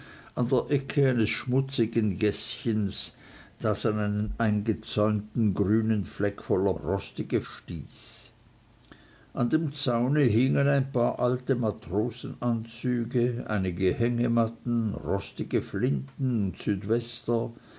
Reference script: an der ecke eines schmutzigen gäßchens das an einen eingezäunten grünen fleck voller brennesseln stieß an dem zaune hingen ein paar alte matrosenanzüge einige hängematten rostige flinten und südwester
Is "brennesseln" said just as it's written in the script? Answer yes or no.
no